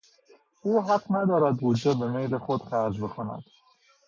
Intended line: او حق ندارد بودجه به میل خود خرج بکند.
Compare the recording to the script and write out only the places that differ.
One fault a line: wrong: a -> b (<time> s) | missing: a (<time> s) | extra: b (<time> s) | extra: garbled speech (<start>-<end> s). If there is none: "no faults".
no faults